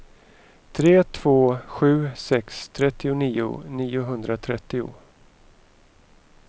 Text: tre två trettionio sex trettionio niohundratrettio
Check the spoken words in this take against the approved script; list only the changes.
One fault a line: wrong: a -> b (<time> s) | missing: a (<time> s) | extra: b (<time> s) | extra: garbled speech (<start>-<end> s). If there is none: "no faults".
wrong: trettionio -> sju (1.7 s)